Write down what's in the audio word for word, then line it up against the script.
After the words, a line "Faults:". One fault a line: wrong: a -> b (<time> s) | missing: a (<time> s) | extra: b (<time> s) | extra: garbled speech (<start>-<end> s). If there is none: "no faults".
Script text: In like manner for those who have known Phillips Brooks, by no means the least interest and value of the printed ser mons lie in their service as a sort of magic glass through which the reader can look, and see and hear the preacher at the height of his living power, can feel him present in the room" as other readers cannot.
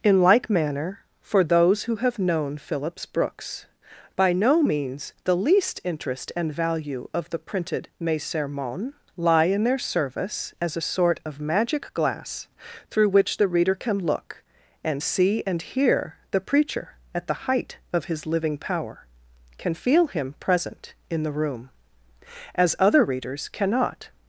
In like manner for those who have known Phillips Brooks, by no means the least interest and value of the printed mes sermons lie in their service as a sort of magic glass through which the reader can look, and see and hear the preacher at the height of his living power, can feel him present in the room" as other readers cannot.
Faults:
wrong: ser mons -> mes sermons (8.0 s)